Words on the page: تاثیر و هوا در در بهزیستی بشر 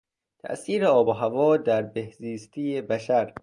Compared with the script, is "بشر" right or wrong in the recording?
right